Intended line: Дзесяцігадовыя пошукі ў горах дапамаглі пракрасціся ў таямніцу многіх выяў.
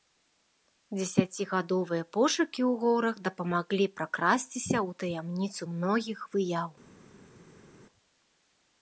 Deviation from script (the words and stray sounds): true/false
false